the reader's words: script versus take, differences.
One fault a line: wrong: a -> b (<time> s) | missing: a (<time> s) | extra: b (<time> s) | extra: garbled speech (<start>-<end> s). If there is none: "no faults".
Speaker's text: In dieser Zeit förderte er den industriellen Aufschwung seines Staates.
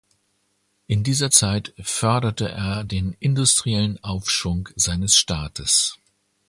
no faults